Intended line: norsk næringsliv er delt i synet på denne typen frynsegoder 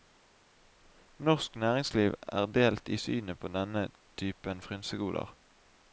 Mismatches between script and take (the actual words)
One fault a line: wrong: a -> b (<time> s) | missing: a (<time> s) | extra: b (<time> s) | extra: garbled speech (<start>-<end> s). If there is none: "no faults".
no faults